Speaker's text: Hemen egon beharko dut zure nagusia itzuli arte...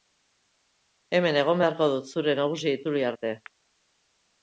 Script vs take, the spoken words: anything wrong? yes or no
no